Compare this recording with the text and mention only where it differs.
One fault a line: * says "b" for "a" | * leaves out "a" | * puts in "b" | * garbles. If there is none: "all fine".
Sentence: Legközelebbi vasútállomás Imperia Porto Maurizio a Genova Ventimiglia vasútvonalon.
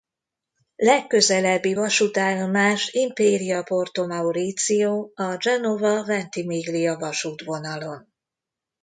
all fine